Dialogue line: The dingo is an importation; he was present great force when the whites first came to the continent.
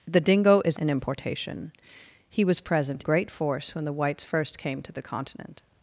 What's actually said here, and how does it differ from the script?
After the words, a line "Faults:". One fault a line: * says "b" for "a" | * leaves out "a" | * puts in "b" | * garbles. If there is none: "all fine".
The dingo is an importation; he was present great force when the whites first came to the continent.
Faults:
all fine